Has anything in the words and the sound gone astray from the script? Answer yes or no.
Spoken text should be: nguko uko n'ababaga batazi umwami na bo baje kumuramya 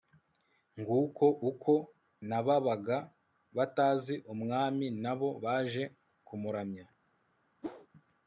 yes